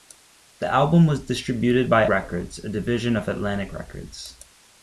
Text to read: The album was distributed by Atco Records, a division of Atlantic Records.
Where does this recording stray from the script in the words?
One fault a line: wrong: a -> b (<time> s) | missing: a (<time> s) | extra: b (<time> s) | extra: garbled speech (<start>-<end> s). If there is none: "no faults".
missing: Atco (2.1 s)